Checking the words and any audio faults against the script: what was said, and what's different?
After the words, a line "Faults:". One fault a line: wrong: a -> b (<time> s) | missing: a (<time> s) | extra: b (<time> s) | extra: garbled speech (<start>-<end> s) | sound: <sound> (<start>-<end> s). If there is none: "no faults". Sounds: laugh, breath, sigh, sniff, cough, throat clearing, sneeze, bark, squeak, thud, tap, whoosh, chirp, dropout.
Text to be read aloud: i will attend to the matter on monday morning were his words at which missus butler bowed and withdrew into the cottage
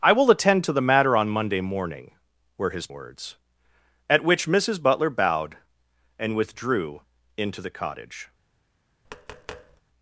i will attend to the matter on monday morning were his words at which missus butler bowed and withdrew into the cottage
Faults:
sound: tap (9.1-9.8 s)